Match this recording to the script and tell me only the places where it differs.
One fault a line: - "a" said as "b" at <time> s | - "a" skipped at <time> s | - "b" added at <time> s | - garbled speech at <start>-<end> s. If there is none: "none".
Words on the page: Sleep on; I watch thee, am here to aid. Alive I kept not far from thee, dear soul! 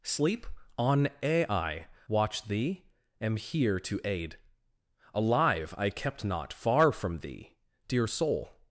none